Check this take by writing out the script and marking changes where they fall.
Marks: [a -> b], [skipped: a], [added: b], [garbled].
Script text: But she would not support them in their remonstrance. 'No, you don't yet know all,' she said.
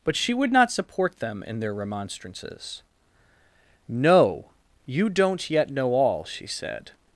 But she would not support them in their [remonstrance. -> remonstrances] 'No, you don't yet know all,' she said.